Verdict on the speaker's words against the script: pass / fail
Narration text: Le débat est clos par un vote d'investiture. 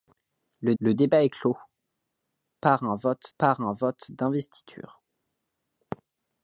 fail